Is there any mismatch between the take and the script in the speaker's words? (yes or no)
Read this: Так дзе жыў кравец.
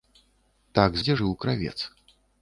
no